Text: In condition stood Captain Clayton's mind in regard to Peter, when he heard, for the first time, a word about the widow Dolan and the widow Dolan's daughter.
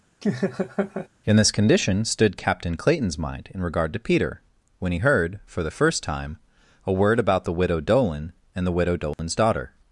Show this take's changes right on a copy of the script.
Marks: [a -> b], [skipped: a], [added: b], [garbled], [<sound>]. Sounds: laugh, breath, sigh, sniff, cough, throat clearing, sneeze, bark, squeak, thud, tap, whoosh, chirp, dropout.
[laugh] In [added: this] condition stood Captain Clayton's mind in regard to Peter, when he heard, for the first time, a word about the widow Dolan and the widow Dolan's [dropout] daughter.